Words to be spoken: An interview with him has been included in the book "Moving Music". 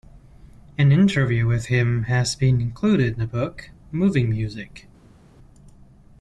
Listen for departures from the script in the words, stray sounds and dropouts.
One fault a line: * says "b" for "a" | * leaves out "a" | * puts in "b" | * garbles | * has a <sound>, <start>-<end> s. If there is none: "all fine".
all fine